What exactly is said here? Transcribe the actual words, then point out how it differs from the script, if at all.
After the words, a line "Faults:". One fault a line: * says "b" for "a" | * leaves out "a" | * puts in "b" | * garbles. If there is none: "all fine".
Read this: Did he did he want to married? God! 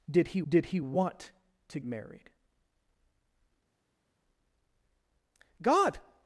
Did he did he want to married? God!
Faults:
all fine